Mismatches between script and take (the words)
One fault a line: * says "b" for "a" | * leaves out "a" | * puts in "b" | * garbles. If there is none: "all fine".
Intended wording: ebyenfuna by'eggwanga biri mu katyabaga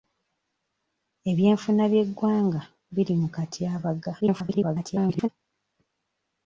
* garbles